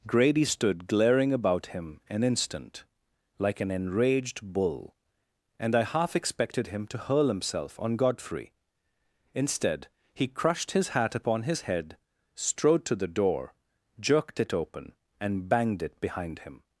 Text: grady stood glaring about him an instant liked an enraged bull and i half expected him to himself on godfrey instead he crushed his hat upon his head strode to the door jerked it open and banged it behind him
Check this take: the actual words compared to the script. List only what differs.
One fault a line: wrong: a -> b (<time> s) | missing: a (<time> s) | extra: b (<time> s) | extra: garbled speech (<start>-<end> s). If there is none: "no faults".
wrong: liked -> like (3.4 s)
extra: hurl (7.0 s)